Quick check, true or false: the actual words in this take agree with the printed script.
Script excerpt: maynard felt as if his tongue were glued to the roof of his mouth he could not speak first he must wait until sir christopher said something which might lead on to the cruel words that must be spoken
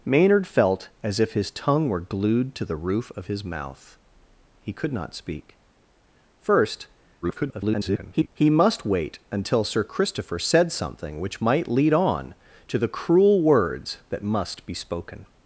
false